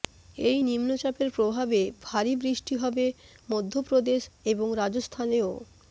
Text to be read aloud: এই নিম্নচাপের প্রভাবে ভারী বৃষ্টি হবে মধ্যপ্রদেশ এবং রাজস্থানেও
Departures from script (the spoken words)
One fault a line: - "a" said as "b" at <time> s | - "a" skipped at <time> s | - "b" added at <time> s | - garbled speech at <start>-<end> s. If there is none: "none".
none